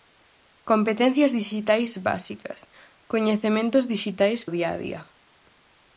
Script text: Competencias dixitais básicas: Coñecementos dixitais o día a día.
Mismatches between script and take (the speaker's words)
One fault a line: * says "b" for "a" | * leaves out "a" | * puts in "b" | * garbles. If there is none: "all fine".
all fine